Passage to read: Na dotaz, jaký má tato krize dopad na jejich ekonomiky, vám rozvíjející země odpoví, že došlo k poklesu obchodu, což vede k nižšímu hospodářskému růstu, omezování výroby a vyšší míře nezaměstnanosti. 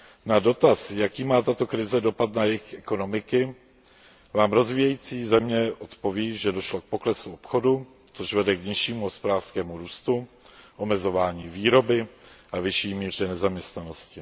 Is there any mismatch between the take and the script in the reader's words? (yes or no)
no